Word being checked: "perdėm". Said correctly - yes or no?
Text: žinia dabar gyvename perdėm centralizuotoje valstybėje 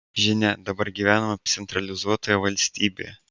no